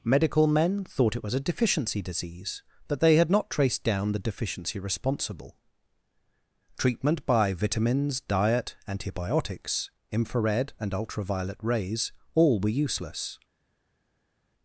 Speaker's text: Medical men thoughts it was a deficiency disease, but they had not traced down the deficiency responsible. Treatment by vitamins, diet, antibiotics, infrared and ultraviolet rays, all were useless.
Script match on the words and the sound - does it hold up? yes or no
no